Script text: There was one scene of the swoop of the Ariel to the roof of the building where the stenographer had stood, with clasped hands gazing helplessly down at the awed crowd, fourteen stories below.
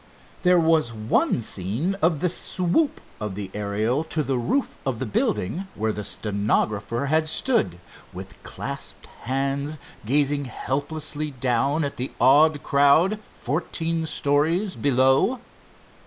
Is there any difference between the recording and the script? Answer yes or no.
no